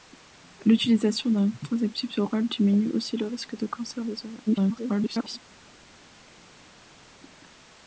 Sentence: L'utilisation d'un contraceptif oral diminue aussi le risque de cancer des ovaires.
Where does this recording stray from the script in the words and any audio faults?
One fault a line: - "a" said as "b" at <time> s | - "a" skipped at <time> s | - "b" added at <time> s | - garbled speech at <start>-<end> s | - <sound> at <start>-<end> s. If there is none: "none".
- garbled speech at 4.5-5.4 s